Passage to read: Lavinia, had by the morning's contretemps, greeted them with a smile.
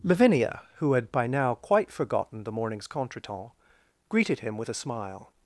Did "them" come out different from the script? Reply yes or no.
yes